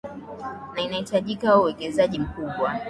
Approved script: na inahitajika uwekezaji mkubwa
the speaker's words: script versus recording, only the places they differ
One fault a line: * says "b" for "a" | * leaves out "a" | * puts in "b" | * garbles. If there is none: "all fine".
all fine